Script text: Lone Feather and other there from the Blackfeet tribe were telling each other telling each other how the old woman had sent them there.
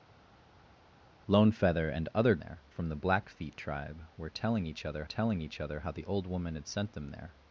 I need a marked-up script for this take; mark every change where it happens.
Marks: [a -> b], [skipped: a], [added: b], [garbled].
Lone Feather and other there from the Blackfeet tribe were telling each other telling each other how the old woman had sent them there.